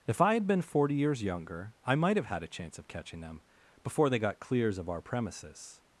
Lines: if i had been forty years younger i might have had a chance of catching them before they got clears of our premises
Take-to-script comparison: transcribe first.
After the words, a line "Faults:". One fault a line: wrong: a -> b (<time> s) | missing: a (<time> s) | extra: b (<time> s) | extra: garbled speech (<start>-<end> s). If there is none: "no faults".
if i had been forty years younger i might have had a chance of catching them before they got clears of our premises
Faults:
no faults